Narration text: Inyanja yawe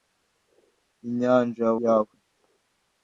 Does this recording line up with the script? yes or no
yes